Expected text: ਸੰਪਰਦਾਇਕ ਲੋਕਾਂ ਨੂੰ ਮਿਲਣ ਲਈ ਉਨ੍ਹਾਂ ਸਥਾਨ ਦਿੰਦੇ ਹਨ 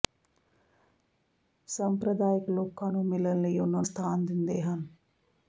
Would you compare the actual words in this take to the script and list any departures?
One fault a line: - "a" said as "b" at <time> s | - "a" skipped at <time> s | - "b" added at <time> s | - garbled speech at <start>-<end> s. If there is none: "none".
none